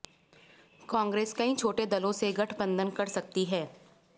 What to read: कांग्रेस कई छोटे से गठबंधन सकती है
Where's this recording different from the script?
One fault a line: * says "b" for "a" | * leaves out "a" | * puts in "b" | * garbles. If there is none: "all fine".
* puts in "दलों"
* puts in "कर"